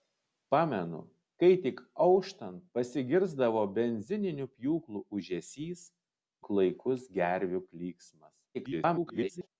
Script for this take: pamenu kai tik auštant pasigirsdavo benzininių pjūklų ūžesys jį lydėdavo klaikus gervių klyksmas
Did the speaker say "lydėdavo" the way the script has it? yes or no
no